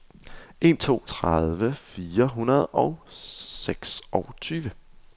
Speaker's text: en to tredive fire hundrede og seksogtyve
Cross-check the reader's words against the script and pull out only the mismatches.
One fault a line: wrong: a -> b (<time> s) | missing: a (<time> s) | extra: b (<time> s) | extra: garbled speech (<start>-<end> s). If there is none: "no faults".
no faults